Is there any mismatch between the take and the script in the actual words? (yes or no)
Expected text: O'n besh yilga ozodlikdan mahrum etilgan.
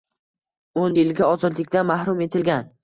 yes